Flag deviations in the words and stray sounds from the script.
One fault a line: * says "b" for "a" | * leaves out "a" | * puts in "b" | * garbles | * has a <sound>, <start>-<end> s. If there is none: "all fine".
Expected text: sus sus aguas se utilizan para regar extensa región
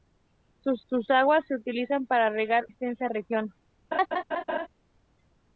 * has a laugh, 3.9-4.7 s